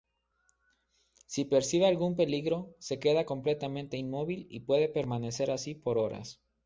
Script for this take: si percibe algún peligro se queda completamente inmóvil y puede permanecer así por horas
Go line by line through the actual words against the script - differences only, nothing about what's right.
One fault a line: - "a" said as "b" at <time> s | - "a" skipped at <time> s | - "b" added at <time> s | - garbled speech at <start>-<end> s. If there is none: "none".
none